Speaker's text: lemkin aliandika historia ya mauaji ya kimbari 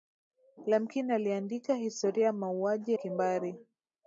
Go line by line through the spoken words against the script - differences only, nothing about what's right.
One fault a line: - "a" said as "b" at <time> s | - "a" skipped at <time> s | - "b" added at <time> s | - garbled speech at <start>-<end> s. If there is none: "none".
- "ya" skipped at 2.9 s